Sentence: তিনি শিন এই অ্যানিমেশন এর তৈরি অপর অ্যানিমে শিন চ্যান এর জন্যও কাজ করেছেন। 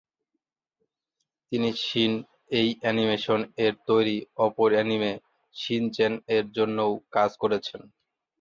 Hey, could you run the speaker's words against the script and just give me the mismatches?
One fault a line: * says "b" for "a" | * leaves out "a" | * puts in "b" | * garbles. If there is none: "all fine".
all fine